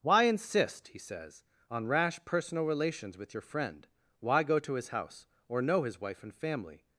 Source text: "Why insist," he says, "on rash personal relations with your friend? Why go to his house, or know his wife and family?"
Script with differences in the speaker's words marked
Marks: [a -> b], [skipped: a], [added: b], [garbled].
"Why insist," he says, "on rash personal relations with your friend? Why go to his house, or know his wife and family?"